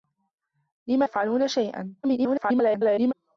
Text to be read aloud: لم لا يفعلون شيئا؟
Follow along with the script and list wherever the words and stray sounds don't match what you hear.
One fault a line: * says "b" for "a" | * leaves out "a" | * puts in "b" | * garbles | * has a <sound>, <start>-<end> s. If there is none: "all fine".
* leaves out "لا"
* garbles